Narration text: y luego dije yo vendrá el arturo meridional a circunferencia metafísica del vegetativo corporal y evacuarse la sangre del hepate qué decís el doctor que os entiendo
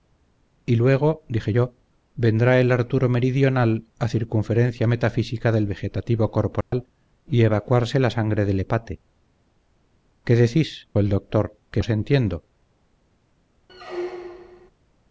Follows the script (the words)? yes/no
yes